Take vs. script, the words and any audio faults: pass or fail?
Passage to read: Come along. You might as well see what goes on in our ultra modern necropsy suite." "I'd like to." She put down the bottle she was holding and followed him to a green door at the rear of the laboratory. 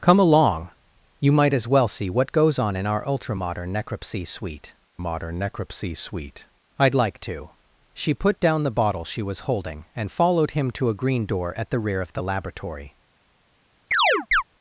fail